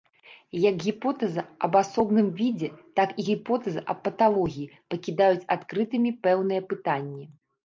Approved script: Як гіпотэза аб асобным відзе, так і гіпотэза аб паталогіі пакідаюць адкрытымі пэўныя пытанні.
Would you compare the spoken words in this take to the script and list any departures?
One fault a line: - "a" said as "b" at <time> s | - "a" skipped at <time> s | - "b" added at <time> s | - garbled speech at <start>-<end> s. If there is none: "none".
none